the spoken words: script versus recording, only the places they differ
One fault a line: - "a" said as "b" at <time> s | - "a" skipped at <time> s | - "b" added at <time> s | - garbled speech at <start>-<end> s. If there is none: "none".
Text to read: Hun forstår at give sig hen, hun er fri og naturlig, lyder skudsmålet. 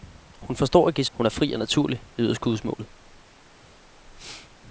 - "sig hen" skipped at 1.1 s